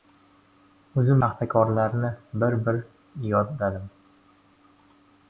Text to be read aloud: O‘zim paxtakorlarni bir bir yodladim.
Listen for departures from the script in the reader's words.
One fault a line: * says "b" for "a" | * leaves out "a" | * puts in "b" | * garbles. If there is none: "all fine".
all fine